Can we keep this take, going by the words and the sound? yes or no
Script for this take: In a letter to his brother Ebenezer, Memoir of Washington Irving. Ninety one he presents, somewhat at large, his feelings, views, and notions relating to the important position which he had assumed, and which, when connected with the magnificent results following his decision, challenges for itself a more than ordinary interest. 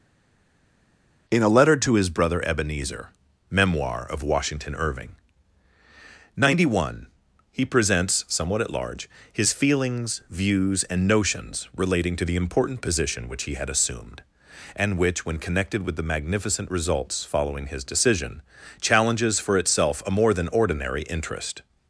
yes